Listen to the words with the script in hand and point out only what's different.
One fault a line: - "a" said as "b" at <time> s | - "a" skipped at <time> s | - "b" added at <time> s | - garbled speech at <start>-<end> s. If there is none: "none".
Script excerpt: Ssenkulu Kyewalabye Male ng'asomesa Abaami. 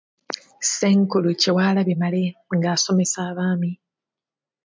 none